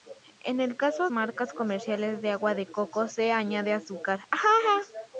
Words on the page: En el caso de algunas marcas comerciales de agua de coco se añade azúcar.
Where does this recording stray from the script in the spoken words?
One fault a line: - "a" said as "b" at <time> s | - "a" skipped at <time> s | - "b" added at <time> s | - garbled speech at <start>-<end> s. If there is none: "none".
- "de algunas" skipped at 1.1 s